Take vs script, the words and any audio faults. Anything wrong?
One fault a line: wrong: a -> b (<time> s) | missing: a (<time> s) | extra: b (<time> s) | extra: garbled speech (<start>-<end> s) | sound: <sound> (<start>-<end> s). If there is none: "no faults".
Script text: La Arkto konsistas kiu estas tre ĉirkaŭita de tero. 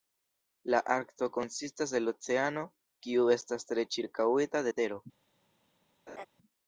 extra: el oceano (2.0 s)
sound: laugh (6.1-6.3 s)